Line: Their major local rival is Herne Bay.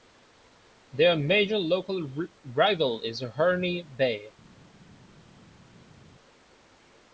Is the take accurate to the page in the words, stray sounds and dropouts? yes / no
yes